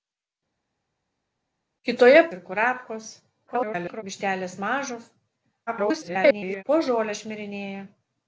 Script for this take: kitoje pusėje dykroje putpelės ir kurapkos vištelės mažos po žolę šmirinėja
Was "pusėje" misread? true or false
true